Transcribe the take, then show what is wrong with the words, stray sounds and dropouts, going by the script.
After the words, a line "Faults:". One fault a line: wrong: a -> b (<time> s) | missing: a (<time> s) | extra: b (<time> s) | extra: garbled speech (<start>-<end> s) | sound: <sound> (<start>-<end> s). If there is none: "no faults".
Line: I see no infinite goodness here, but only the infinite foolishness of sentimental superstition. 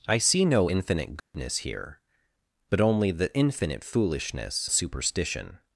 I see no infinite goodness here, but only the infinite foolishness superstition.
Faults:
sound: dropout (1.2-1.3 s)
missing: of sentimental (4.7 s)